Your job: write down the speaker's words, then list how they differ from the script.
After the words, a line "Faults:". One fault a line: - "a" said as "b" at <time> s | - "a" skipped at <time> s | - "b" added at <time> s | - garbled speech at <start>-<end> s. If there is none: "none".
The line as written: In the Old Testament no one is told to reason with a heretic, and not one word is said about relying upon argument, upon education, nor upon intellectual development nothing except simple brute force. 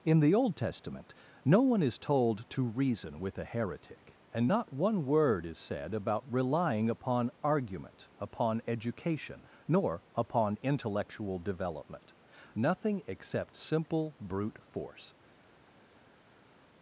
In the Old Testament no one is told to reason with a heretic, and not one word is said about relying upon argument, upon education, nor upon intellectual development nothing except simple brute force.
Faults:
none